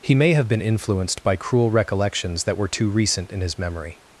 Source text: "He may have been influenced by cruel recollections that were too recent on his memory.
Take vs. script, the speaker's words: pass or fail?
fail